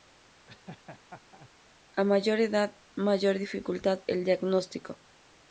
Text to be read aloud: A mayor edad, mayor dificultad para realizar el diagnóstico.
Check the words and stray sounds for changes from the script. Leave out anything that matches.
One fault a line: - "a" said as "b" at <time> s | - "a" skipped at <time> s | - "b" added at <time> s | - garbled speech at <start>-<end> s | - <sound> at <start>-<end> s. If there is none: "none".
- laugh at 0.5-1.5 s
- "para realizar" skipped at 4.0 s